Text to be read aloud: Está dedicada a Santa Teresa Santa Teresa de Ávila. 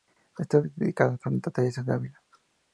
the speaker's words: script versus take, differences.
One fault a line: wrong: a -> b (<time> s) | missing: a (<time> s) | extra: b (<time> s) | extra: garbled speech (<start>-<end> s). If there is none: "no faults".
missing: Santa Teresa (1.8 s)